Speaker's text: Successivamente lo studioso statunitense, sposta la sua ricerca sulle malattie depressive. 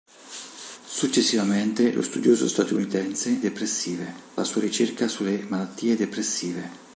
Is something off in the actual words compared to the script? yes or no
yes